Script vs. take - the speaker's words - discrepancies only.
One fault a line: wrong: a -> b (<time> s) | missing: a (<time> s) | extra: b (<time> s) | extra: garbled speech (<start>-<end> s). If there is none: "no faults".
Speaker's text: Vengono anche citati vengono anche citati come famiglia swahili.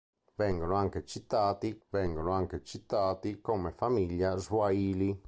no faults